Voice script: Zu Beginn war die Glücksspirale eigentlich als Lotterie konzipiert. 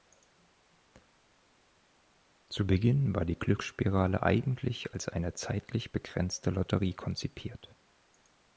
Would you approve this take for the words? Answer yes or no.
no